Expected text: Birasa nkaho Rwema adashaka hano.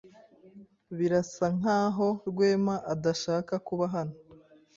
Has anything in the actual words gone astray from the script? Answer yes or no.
yes